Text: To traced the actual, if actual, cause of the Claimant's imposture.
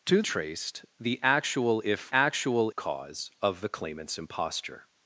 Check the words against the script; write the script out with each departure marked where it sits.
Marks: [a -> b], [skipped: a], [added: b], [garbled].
To traced the actual, if actual, cause of the Claimant's imposture.